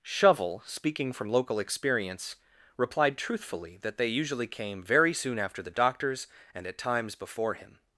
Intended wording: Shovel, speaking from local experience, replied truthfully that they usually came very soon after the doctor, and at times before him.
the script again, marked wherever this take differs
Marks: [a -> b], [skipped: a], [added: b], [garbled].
Shovel, speaking from local experience, replied truthfully that they usually came very soon after the [doctor, -> doctors] and at times before him.